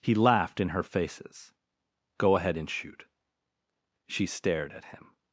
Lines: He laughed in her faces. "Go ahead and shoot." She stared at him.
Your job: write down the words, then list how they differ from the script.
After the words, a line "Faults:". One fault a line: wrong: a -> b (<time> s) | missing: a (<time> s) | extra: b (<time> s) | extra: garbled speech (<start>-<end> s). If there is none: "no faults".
He laughed in her faces. "Go ahead and shoot." She stared at him.
Faults:
no faults